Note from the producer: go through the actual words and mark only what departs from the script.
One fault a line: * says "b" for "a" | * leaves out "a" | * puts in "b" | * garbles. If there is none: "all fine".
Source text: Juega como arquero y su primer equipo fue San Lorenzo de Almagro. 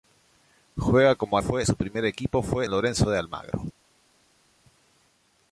* says "fue" for "arquero"
* leaves out "San"